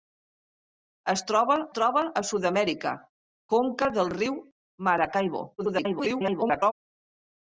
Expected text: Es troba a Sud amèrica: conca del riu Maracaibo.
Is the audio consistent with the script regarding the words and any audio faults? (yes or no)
no